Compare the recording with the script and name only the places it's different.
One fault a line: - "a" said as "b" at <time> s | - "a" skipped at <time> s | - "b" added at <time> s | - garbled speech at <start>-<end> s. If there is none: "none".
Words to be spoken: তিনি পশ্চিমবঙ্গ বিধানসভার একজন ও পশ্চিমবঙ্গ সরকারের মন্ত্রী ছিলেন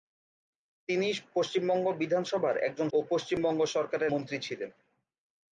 none